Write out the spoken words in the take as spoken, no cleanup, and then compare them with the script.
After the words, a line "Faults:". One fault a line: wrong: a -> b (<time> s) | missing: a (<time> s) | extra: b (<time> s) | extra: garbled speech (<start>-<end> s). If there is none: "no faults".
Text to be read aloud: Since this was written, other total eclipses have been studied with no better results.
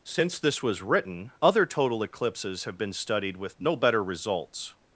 Since this was written, other total eclipses have been studied with no better results.
Faults:
no faults